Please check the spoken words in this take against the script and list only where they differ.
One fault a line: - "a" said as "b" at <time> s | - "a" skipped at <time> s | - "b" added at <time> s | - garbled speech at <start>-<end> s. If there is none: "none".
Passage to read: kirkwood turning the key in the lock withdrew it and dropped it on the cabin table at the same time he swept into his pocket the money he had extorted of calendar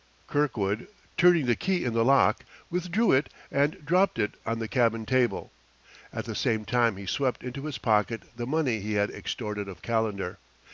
none